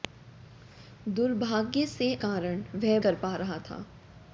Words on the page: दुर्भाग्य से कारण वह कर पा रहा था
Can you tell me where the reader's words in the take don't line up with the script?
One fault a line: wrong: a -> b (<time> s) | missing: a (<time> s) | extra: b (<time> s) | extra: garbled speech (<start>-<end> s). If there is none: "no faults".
no faults